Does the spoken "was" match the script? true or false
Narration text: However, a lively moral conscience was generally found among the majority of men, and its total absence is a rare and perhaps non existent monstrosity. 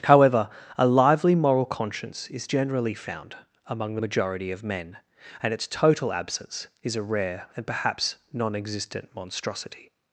false